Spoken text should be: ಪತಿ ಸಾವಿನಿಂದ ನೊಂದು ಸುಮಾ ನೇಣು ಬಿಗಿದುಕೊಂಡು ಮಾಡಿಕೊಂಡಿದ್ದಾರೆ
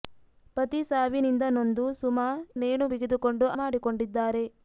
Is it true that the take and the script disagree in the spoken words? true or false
false